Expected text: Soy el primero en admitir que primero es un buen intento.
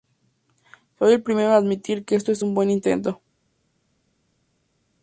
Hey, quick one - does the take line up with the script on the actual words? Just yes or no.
no